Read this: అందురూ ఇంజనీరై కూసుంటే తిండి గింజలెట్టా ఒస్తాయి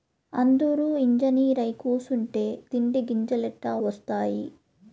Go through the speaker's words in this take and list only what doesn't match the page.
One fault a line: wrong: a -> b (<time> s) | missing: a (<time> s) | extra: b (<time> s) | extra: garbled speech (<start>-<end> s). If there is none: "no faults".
no faults